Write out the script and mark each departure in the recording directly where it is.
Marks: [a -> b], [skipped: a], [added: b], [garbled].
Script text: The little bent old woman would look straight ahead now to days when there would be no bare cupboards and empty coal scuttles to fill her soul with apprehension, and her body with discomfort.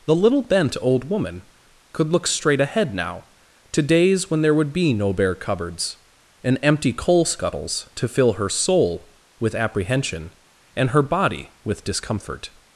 The little bent old woman [would -> could] look straight ahead now to days when there would be no bare cupboards and empty coal scuttles to fill her soul with apprehension, and her body with discomfort.